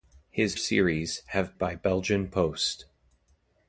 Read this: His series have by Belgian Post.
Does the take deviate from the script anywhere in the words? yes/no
no